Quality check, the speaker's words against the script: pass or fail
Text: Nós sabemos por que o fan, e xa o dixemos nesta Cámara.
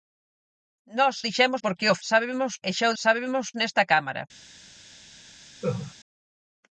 fail